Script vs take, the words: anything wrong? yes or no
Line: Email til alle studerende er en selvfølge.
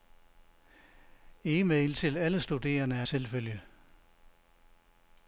yes